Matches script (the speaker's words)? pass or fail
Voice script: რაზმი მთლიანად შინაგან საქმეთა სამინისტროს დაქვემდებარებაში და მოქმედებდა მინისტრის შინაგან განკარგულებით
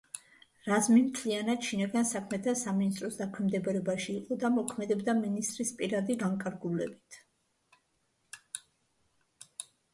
fail